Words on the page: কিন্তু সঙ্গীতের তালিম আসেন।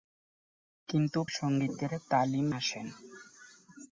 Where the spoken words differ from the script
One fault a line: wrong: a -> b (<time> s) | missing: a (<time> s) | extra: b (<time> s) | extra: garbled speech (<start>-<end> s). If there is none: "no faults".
no faults